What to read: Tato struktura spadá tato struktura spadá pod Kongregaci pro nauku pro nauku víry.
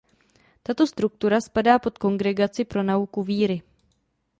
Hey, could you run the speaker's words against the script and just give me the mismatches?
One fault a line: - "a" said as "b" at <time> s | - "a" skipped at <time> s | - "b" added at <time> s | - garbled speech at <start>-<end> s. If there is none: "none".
- "tato struktura spadá" skipped at 1.8 s
- "pro nauku" skipped at 3.2 s